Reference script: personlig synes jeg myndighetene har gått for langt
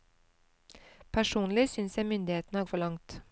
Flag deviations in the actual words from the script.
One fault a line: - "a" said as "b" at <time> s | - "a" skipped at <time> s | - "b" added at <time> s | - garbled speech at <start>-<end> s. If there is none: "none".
- "gått" skipped at 2.7 s